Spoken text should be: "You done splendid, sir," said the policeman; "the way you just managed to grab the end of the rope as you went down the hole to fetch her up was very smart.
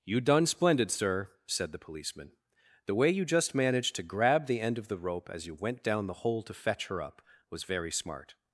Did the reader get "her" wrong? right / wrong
right